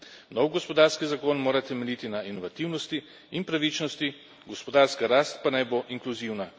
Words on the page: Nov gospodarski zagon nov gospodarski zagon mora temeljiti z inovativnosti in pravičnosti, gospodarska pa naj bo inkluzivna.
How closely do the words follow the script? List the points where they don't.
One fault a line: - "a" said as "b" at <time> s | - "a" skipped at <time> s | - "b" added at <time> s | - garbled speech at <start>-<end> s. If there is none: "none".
- "nov gospodarski zagon" skipped at 1.4 s
- "z" said as "na" at 2.1 s
- "rast" added at 5.1 s